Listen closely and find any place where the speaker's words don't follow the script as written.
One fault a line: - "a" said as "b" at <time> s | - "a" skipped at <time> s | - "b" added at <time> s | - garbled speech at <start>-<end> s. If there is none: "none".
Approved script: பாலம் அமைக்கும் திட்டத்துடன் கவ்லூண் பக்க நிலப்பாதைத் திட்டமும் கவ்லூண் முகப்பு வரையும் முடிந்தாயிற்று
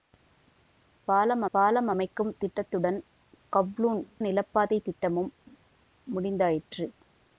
- "பாலம்" added at 1.5 s
- "பக்க" skipped at 4.0 s
- "கவ்லூண் முகப்பு வரையும்" skipped at 5.3 s